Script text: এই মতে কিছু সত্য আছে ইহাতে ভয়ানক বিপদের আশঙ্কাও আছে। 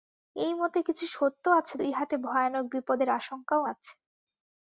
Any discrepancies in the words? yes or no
no